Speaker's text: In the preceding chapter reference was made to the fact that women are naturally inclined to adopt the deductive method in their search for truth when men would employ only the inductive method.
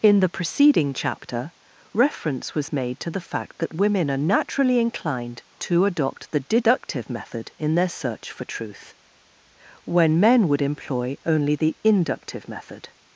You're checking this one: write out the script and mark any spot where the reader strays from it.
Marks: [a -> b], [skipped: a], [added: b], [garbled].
In the preceding chapter reference was made to the fact that women are naturally inclined to adopt the deductive method in their search for truth when men would employ only the inductive method.